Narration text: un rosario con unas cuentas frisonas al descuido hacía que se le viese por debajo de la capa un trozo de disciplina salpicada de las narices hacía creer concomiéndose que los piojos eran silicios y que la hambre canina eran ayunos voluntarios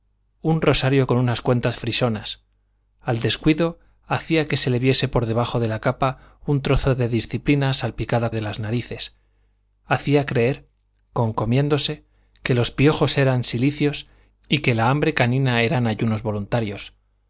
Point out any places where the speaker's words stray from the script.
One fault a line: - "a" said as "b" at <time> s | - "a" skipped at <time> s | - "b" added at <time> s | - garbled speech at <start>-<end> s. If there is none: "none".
none